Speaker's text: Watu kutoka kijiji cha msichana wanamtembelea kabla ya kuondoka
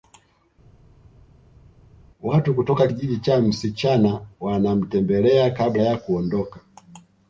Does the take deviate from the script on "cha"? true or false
false